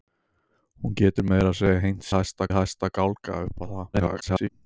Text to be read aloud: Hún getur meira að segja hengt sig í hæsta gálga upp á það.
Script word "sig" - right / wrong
wrong